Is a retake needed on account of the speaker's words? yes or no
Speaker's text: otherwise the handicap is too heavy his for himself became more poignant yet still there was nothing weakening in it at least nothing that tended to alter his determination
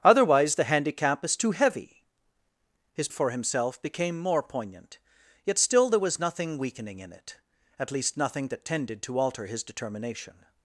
no